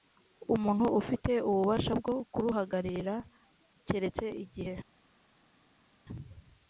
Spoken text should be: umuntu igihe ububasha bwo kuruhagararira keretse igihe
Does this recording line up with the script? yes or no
no